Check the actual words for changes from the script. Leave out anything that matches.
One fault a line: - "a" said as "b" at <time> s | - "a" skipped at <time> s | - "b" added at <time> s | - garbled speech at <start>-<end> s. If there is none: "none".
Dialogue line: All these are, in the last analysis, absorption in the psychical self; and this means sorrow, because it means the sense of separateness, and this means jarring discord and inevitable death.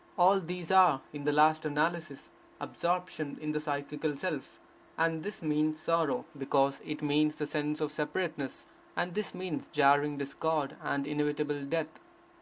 none